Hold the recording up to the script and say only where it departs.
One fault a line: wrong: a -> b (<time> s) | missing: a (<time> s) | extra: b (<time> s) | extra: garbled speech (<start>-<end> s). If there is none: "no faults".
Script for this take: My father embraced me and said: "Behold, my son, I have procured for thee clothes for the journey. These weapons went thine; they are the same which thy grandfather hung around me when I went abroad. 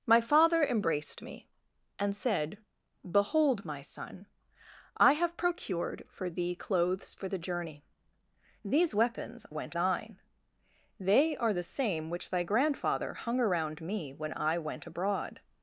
no faults